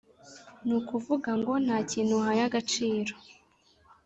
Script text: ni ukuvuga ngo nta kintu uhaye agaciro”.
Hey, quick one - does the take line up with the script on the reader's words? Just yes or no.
yes